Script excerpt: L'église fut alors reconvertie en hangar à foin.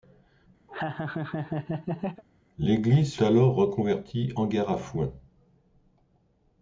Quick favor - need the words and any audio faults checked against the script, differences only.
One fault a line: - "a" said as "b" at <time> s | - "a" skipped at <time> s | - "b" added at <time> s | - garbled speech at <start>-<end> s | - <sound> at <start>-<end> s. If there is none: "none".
- laugh at 0.7-2.2 s
- "fut" skipped at 3.2 s
- "en" skipped at 4.3 s